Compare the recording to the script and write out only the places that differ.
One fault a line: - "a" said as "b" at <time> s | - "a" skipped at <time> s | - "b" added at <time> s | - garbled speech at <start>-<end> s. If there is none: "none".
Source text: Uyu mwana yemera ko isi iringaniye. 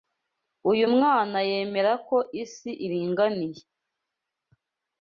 none